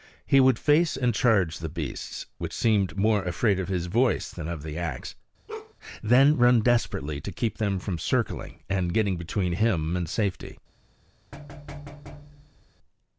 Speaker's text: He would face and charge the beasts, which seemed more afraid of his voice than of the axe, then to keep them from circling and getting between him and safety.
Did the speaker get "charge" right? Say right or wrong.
right